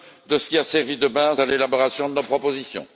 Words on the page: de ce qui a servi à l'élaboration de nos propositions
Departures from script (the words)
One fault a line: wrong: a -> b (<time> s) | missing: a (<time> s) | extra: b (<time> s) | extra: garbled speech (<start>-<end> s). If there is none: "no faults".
extra: de base (1.0 s)